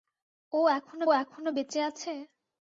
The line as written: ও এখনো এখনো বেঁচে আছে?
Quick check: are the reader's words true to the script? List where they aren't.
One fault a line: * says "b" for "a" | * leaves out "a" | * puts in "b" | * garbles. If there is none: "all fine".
all fine